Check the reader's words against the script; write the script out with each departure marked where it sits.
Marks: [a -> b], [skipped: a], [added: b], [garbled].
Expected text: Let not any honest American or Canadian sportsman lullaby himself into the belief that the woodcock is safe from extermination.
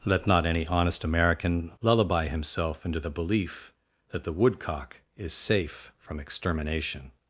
Let not any honest American [skipped: or Canadian sportsman] lullaby himself into the belief that the woodcock is safe from extermination.